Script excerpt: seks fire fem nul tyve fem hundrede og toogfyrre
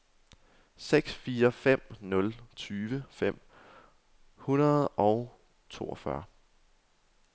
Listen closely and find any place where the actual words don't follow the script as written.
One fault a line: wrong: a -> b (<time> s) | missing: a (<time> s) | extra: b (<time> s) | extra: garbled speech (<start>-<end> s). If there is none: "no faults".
no faults